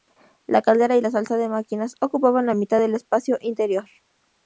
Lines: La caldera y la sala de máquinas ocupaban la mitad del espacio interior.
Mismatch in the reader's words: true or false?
false